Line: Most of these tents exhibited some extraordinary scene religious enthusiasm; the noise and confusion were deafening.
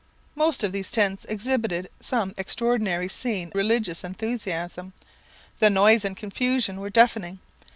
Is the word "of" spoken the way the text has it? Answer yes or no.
yes